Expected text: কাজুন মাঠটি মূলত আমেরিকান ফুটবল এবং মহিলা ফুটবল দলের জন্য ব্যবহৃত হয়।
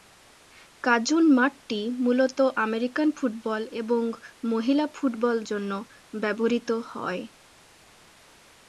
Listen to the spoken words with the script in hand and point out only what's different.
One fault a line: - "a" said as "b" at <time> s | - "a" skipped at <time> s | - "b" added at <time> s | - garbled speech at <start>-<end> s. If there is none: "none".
- "দলের" skipped at 5.3 s